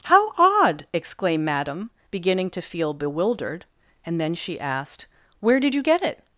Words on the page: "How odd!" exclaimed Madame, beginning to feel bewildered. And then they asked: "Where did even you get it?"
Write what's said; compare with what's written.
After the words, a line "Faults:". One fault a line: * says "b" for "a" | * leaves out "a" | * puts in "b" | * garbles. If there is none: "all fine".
"How odd!" exclaimed Madame, beginning to feel bewildered. And then she asked: "Where did you get it?"
Faults:
* says "she" for "they"
* leaves out "even"